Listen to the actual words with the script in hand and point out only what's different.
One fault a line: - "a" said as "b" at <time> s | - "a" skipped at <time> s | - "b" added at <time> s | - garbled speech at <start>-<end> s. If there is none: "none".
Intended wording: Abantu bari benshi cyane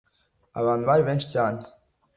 none